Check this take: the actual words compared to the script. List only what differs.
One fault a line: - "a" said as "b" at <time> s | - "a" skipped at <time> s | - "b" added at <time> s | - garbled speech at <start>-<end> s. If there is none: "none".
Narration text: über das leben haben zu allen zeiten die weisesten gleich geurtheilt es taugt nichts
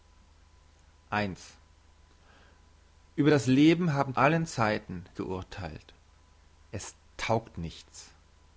- "zu" skipped at 4.1 s
- "die weisesten gleich" skipped at 5.0 s